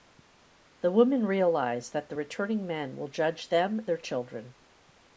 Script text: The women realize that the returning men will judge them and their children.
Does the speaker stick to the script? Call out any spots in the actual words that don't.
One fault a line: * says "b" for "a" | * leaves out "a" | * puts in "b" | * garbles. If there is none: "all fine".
* leaves out "and"